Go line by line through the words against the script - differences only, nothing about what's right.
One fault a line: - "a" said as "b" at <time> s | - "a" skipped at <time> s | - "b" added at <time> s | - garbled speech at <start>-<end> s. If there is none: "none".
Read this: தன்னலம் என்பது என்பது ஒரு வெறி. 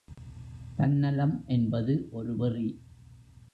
- "என்பது" skipped at 2.1 s